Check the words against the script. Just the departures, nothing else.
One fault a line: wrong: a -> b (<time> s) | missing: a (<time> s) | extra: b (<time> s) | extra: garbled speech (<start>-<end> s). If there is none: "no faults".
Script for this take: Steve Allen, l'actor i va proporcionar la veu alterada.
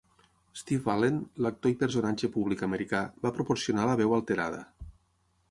extra: personatge públic americà (1.8 s)